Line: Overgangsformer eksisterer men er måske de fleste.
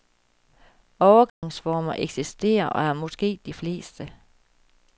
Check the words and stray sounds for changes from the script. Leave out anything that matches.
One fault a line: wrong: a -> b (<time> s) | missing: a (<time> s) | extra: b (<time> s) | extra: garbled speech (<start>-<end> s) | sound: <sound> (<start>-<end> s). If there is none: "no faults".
sound: dropout (1.3-1.4 s)
wrong: men -> og (2.7 s)